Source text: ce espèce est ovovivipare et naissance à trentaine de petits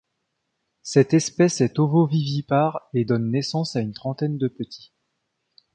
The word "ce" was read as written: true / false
false